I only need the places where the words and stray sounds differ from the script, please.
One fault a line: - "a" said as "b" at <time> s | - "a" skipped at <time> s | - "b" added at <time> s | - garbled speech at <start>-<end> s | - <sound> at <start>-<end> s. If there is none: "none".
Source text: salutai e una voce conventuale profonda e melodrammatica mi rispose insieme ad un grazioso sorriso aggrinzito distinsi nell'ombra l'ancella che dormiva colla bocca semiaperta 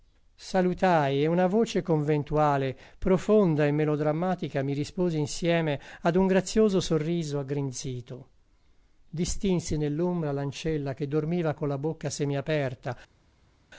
none